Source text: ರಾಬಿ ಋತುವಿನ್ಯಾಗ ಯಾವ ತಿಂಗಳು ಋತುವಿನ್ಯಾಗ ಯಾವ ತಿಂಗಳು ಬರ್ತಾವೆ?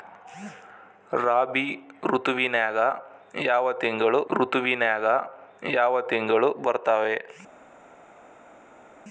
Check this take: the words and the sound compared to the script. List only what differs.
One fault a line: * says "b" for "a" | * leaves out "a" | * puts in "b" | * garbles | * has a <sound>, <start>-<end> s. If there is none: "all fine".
all fine